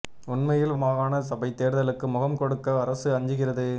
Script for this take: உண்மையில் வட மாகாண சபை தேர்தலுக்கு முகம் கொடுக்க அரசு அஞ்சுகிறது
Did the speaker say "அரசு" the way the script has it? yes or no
yes